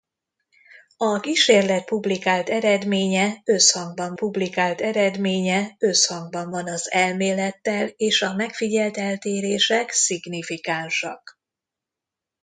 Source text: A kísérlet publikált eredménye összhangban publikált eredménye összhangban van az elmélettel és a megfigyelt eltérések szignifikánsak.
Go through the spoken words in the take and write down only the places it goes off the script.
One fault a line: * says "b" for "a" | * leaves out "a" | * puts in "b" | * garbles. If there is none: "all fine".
all fine